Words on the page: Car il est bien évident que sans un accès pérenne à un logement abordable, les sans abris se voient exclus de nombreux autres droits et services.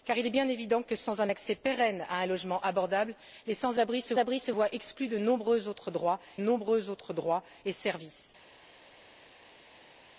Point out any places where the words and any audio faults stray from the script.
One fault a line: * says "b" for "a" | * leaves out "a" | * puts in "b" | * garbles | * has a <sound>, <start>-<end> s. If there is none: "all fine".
* puts in "abris se"
* puts in "nombreux autres droits"